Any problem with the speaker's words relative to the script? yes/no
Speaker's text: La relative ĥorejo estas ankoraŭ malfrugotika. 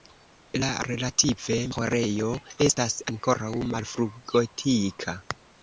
no